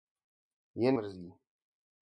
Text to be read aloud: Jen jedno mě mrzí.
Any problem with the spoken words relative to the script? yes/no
yes